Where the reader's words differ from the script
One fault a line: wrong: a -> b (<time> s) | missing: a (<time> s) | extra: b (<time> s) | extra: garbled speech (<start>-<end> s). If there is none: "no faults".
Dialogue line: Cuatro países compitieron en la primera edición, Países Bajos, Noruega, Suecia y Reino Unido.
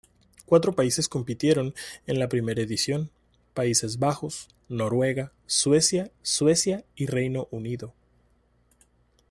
extra: Suecia (6.2 s)